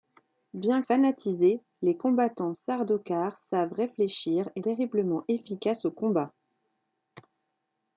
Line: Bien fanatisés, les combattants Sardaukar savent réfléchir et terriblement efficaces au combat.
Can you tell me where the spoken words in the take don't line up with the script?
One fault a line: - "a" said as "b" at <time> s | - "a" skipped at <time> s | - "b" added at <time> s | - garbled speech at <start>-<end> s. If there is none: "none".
none